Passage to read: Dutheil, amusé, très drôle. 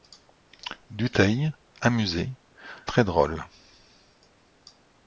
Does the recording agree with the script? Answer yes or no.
yes